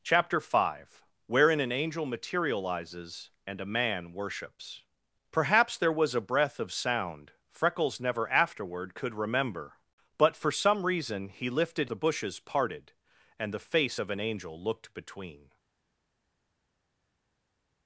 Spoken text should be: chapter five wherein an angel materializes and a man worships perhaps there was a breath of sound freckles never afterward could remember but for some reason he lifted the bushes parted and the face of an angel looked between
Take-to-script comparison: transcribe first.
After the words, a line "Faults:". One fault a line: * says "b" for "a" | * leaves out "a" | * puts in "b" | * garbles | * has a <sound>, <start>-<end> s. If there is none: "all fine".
chapter five wherein an angel materializes and a man worships perhaps there was a breath of sound freckles never afterward could remember but for some reason he lifted the bushes parted and the face of an angel looked between
Faults:
all fine